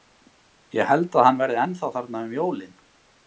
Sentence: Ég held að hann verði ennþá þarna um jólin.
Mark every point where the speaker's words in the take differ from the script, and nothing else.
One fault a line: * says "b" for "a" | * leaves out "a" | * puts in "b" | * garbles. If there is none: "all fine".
all fine